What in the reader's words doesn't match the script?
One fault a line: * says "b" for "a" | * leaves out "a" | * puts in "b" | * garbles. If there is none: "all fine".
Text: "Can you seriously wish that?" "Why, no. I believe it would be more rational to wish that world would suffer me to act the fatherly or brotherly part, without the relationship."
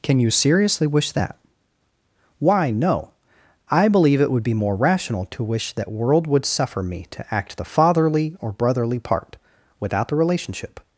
all fine